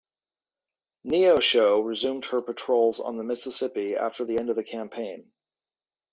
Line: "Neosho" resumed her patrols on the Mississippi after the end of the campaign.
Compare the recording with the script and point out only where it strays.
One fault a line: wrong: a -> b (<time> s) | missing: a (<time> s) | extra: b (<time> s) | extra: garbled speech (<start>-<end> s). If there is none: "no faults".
no faults